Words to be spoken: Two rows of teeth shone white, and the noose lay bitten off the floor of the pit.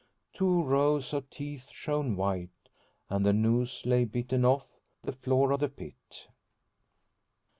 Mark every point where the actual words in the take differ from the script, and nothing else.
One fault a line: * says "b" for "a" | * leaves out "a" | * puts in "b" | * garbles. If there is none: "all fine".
all fine